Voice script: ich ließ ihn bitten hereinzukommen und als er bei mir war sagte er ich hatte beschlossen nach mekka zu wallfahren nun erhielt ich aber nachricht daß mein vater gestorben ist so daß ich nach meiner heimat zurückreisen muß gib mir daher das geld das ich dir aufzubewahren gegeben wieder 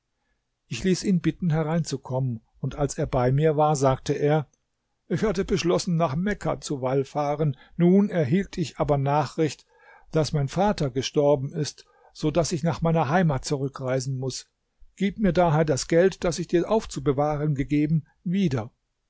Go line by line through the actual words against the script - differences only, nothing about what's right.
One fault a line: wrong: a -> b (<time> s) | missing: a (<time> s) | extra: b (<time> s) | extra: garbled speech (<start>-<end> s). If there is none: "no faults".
no faults